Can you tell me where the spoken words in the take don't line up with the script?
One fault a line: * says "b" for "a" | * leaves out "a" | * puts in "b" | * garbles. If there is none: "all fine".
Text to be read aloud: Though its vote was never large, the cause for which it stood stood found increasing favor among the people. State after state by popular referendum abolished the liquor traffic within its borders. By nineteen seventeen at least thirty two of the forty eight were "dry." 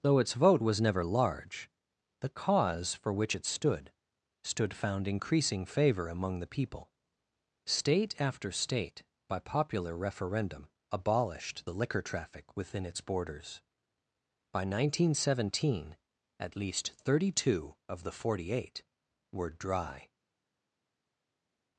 all fine